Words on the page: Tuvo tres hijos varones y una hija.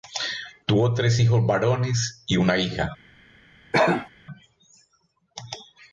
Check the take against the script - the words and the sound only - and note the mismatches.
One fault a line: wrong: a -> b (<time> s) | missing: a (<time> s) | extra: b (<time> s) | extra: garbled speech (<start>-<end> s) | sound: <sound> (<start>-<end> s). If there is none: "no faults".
sound: cough (3.7-4.1 s)